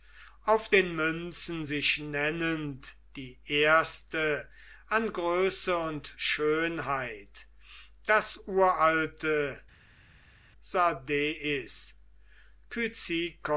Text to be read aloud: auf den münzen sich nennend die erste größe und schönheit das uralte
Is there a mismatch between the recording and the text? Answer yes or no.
yes